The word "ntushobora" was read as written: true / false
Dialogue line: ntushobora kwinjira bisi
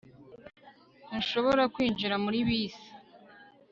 true